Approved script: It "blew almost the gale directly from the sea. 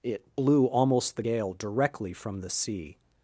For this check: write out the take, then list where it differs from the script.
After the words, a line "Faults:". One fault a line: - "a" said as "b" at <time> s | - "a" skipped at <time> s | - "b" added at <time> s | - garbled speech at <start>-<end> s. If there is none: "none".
It "blew almost the gale directly from the sea.
Faults:
none